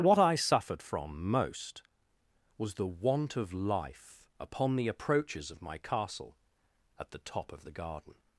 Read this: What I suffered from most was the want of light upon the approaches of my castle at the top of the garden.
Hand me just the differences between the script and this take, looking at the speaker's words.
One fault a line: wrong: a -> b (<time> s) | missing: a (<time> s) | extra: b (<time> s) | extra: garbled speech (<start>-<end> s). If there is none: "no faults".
wrong: light -> life (3.5 s)